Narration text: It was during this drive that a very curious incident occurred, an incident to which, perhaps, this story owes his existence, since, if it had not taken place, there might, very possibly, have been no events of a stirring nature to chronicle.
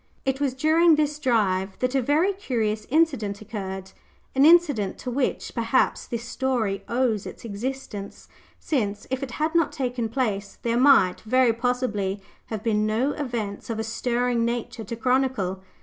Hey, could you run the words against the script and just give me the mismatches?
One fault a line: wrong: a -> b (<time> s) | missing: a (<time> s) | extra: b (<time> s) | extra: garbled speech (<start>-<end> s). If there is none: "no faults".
wrong: his -> its (7.3 s)